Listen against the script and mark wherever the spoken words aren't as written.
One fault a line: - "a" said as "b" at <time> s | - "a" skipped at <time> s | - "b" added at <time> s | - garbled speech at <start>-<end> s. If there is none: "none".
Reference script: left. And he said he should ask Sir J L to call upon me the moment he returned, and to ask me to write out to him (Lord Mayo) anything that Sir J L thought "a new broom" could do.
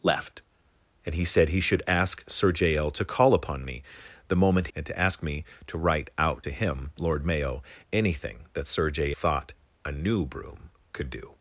- "he returned" skipped at 4.7 s
- "L" skipped at 9.1 s